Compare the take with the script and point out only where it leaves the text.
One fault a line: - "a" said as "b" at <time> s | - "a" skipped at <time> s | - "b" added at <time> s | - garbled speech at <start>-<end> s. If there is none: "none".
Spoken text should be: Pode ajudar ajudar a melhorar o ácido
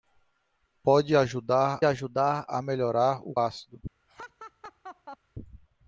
none